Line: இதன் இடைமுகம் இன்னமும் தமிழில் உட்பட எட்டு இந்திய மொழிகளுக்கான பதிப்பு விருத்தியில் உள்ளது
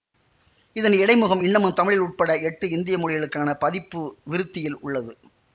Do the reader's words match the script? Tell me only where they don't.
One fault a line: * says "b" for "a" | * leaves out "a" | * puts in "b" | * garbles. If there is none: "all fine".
all fine